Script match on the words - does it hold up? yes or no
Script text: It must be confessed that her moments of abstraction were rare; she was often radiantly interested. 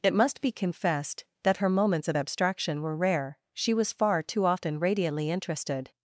no